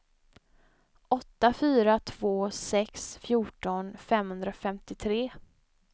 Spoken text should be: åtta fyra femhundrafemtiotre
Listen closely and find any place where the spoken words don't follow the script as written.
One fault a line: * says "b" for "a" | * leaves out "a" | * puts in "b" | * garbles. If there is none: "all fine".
* puts in "två sex fjorton"